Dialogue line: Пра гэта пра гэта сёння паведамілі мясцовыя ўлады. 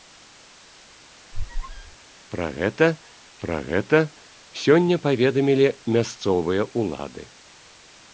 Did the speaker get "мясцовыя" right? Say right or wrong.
right